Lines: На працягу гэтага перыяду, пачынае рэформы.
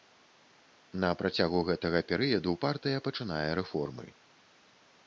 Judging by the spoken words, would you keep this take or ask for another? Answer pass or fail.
fail